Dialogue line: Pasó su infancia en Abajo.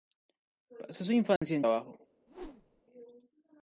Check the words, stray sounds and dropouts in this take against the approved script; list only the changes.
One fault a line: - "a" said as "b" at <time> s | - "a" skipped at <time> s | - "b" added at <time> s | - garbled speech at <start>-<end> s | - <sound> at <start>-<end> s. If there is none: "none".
- dropout at 1.4-1.4 s
- whoosh at 2.3-2.8 s